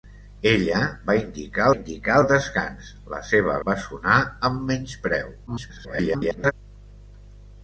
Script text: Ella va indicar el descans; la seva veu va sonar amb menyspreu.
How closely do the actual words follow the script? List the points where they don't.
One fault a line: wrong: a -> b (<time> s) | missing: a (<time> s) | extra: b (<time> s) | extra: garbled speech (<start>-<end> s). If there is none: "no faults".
extra: indicar (1.7 s)
missing: veu (3.6 s)
extra: garbled speech (5.5-6.5 s)